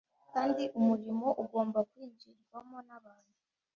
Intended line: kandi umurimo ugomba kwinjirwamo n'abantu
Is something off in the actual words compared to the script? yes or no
no